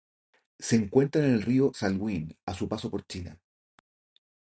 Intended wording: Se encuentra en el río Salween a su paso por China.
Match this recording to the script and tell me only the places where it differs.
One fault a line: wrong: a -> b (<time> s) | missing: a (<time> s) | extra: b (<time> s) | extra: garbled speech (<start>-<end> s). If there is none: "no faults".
no faults